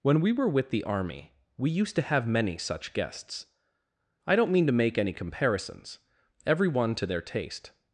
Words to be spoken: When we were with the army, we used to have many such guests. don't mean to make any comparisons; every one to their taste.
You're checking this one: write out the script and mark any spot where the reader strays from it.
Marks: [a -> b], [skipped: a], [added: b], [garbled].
When we were with the army, we used to have many such guests. [added: I] don't mean to make any comparisons; every one to their taste.